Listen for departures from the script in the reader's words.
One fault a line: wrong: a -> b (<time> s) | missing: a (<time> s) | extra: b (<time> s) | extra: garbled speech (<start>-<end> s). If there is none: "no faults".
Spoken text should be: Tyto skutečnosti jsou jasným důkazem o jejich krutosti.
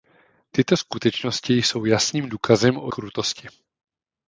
missing: jejich (2.9 s)